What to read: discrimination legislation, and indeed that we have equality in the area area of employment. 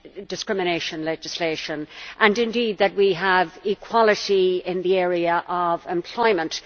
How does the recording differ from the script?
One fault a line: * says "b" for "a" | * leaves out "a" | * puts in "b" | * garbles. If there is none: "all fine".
* leaves out "area"